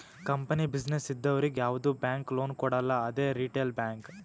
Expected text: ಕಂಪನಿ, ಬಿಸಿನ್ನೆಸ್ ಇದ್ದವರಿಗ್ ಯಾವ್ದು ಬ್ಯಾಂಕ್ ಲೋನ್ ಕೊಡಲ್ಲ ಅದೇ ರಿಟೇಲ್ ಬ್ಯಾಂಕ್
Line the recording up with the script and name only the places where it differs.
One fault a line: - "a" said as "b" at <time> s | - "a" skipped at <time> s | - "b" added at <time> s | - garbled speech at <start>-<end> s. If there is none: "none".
none